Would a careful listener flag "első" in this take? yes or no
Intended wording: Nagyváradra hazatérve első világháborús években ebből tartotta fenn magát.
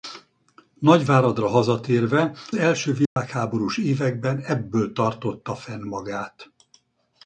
no